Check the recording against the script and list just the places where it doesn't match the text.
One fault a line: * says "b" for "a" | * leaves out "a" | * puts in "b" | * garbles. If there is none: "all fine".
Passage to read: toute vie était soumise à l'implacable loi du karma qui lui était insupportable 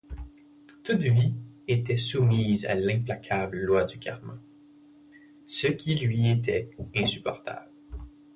* puts in "ce"